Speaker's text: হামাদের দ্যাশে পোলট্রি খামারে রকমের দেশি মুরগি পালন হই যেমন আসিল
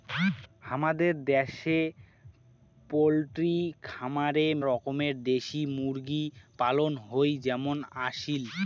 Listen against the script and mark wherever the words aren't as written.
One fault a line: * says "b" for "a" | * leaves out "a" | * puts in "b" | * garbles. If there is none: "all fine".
all fine